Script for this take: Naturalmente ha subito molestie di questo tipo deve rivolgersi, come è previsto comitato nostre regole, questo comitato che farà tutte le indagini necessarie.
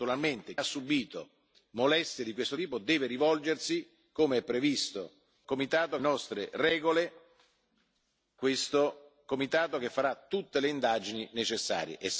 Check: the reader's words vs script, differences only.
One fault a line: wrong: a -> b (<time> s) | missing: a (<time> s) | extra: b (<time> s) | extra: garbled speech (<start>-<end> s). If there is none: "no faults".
no faults